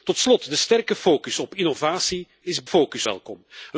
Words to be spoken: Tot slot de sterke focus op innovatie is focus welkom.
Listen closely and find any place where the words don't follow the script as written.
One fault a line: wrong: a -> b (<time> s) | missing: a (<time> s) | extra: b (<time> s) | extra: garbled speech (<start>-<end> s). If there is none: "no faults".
no faults